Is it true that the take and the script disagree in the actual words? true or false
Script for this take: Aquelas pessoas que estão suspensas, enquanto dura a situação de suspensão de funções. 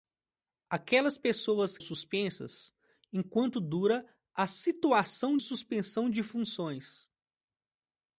true